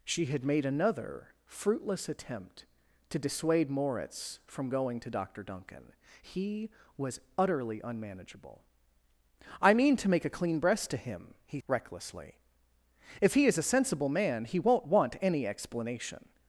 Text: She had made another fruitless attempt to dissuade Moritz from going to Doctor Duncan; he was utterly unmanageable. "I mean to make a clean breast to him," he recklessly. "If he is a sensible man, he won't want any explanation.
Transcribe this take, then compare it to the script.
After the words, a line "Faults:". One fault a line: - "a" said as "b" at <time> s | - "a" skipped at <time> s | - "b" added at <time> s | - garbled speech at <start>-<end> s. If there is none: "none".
She had made another fruitless attempt to dissuade Moritz from going to Doctor Duncan; he was utterly unmanageable. "I mean to make a clean breast to him," he recklessly. "If he is a sensible man, he won't want any explanation.
Faults:
none